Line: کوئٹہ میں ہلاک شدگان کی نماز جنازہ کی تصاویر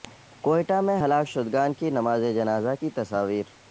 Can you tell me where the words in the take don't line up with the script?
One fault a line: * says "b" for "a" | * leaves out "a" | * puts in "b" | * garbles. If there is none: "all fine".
all fine